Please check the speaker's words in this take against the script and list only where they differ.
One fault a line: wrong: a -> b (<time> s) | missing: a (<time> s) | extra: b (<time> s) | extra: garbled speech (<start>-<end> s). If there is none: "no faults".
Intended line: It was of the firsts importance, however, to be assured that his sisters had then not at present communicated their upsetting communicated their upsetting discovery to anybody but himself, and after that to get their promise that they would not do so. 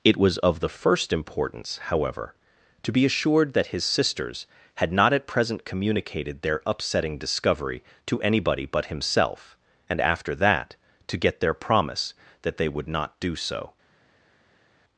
wrong: firsts -> first (0.7 s)
missing: then (4.9 s)
missing: communicated their upsetting (7.2 s)